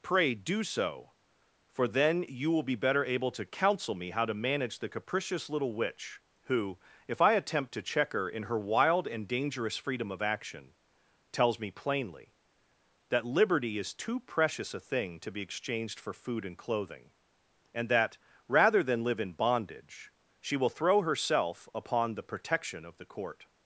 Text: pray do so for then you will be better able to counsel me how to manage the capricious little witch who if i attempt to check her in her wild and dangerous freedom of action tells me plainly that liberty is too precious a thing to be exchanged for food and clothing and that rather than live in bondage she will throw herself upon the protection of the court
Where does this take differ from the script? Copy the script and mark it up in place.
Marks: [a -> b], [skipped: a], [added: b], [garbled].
pray do so for then you will be better able to counsel me how to manage the capricious little witch who if i attempt to check her in her wild and dangerous freedom of action tells me plainly that liberty is too precious a thing to be exchanged for food and clothing and that rather than live in bondage she will throw herself upon the protection of the court